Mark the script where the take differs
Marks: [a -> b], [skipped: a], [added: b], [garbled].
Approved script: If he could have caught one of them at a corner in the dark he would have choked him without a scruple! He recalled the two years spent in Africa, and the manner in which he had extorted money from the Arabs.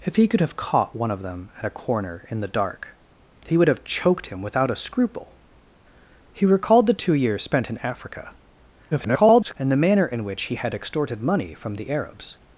If he could have caught one of them at a corner in the dark he would have choked him without a scruple! He recalled the two years spent in Africa, [garbled] and the manner in which he had extorted money from the Arabs.